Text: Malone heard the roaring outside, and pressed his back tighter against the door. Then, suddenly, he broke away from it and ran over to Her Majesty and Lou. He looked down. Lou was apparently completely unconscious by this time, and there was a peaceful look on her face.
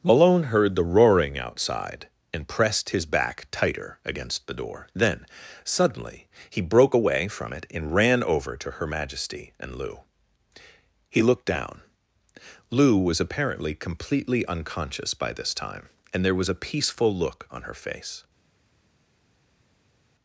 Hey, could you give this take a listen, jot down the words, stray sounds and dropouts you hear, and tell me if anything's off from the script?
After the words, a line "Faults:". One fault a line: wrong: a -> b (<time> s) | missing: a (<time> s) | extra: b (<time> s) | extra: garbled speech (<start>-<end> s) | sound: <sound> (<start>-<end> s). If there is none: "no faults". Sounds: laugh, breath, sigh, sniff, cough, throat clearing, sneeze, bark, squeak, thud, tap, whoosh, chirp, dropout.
Malone heard the roaring outside, and pressed his back tighter against the door. Then, suddenly, he broke away from it and ran over to Her Majesty and Lou. He looked down. Lou was apparently completely unconscious by this time, and there was a peaceful look on her face.
Faults:
no faults